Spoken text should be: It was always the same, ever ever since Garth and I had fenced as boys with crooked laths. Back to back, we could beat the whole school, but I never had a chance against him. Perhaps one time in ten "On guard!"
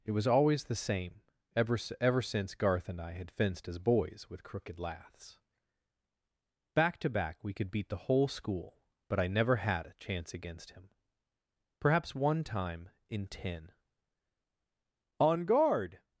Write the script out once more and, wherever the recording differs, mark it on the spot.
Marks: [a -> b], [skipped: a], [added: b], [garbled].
It was always the same, ever ever since Garth and I had fenced as boys with crooked laths. Back to back, we could beat the whole school, but I never had a chance against him. Perhaps one time in ten "On guard!"